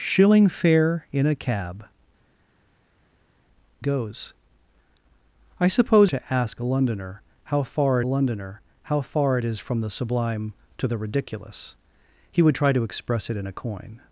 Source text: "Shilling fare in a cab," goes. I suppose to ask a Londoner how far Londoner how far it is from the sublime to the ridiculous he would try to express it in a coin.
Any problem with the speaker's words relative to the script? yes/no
no